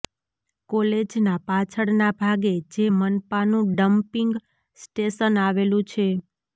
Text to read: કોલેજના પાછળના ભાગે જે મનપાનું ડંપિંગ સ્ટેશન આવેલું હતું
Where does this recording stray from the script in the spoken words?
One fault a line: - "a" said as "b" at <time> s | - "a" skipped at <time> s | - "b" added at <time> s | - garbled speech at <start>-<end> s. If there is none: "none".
- "હતું" said as "છે" at 5.9 s